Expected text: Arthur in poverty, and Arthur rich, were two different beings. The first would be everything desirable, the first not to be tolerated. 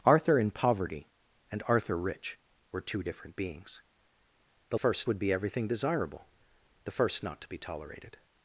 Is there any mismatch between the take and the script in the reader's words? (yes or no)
no